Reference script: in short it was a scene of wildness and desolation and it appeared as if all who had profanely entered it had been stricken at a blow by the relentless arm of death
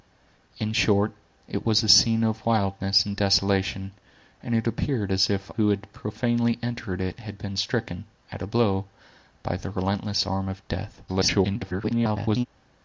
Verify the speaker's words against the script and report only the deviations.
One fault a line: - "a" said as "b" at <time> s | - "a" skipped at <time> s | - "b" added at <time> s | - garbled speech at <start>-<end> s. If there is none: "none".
- "all" skipped at 5.5 s
- garbled speech at 11.1-12.5 s